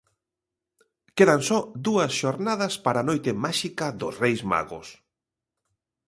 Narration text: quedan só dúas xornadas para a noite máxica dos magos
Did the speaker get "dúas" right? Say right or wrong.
right